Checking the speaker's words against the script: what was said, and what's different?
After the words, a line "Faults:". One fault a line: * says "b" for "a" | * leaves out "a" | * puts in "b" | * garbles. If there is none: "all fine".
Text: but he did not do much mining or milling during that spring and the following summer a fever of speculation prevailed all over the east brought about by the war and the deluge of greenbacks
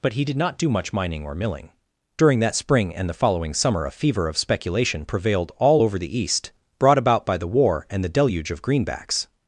but he did not do much mining or milling during that spring and the following summer a fever of speculation prevailed all over the east brought about by the war and the deluge of greenbacks
Faults:
all fine